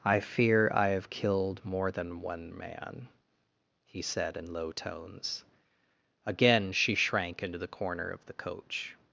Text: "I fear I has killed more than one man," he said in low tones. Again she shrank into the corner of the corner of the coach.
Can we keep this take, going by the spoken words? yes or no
no